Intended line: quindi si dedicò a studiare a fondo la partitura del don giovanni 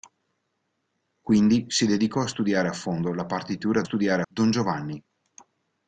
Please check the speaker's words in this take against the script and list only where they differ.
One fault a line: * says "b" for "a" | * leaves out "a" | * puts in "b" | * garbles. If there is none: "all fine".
* says "studiare" for "del"